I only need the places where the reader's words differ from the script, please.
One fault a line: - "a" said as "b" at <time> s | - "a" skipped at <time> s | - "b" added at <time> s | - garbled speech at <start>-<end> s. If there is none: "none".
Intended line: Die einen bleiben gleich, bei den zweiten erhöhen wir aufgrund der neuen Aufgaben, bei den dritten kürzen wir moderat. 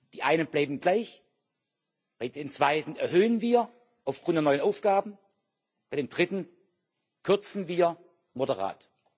none